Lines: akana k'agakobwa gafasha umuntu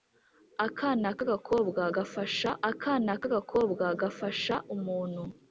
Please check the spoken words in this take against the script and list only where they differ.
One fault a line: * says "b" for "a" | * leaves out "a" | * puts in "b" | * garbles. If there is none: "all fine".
* puts in "akana k'agakobwa gafasha"